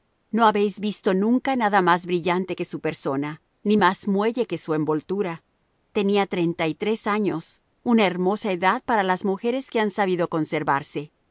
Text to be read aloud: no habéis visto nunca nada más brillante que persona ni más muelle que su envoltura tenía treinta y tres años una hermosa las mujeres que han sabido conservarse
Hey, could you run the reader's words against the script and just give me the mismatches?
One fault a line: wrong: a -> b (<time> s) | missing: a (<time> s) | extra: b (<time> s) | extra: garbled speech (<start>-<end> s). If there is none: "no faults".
extra: su (2.7 s)
extra: edad para (8.5 s)